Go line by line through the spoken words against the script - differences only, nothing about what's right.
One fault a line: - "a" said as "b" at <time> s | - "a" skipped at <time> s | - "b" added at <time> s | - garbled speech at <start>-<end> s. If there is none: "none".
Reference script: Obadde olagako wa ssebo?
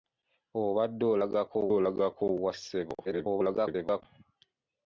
- "olagako" added at 1.8 s
- garbled speech at 3.0-4.0 s